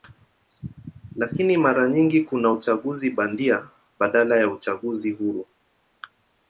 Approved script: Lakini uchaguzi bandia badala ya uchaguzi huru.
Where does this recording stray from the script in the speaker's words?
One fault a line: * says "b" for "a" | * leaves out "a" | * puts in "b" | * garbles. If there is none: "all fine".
* puts in "mara nyingi kuna"